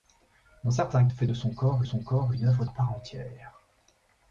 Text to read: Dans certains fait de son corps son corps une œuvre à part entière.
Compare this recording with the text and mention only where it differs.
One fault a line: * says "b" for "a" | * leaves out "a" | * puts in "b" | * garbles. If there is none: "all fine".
all fine